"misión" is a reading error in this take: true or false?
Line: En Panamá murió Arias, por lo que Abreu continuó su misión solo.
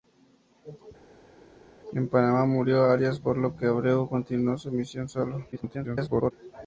false